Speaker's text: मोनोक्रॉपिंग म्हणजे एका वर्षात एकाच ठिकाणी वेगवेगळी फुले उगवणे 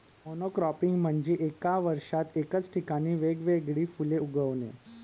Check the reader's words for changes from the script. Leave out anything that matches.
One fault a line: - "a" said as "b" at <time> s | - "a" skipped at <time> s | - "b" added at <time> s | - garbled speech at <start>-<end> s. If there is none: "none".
none